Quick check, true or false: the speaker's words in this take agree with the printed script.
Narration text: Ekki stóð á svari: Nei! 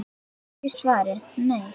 false